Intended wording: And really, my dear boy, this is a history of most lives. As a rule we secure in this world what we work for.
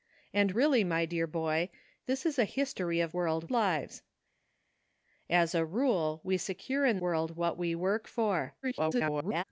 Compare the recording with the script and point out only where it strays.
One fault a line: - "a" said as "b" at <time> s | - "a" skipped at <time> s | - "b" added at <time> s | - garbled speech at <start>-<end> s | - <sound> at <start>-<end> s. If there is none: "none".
- "most" said as "world" at 3.1 s
- "this" skipped at 7.0 s
- garbled speech at 8.6-9.4 s